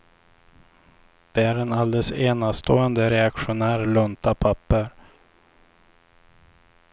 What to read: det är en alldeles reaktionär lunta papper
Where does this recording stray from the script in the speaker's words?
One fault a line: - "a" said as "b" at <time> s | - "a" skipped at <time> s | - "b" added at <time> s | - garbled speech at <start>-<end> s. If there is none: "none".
- "enastående" added at 2.1 s